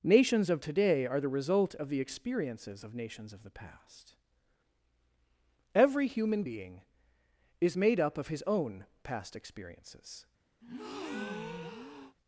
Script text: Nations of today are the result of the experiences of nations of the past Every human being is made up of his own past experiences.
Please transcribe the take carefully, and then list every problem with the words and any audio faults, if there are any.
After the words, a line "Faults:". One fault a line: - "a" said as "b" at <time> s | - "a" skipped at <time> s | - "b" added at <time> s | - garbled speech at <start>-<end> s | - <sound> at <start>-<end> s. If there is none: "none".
Nations of today are the result of the experiences of nations of the past Every human being is made up of his own past experiences.
Faults:
- breath at 10.6-12.2 s